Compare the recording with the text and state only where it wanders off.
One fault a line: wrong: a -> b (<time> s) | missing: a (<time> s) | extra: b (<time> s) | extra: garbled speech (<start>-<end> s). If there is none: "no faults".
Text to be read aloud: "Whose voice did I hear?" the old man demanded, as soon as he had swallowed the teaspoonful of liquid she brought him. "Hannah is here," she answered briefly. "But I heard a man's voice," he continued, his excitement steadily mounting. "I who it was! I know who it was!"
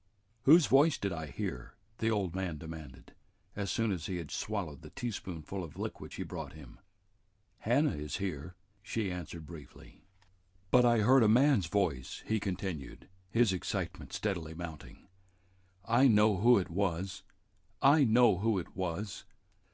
extra: know (16.1 s)